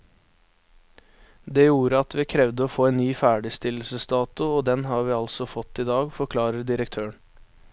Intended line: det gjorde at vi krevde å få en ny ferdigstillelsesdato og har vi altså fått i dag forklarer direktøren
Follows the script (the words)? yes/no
no